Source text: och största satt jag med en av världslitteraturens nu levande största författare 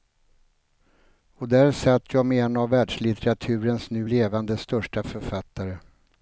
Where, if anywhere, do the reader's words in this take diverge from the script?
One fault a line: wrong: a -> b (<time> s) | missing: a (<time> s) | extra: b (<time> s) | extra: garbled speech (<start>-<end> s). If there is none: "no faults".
wrong: största -> där (1.5 s)